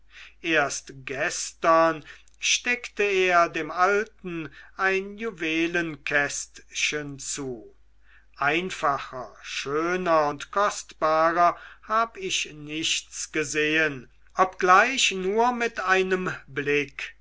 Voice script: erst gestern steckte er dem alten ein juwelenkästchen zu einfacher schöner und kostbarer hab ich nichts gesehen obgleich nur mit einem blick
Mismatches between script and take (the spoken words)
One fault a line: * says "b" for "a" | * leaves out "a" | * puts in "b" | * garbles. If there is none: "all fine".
all fine